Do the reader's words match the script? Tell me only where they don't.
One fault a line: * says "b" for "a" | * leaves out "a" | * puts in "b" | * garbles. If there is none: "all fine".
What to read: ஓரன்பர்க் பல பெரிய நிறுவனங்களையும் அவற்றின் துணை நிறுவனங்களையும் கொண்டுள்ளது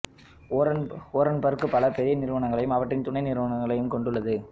all fine